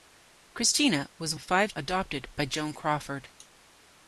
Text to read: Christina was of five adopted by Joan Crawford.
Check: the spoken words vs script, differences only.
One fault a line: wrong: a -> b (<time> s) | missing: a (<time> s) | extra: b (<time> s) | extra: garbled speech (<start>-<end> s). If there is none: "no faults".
no faults